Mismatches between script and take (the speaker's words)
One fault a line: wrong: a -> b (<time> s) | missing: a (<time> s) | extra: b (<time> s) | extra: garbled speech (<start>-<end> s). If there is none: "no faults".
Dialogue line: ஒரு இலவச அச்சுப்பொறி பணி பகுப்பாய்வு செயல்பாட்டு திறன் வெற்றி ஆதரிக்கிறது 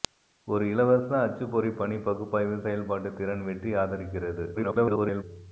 extra: garbled speech (4.5-5.2 s)